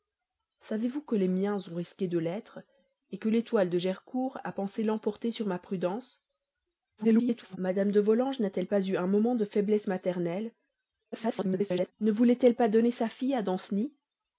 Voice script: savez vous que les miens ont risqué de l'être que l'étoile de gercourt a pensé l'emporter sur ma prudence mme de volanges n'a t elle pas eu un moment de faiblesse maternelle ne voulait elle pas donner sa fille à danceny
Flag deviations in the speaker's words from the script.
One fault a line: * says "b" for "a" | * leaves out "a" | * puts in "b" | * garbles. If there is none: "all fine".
* garbles
* garbles